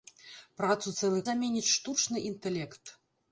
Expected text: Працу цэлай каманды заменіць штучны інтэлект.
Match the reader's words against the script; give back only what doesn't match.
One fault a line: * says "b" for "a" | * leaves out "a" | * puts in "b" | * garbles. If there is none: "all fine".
* leaves out "каманды"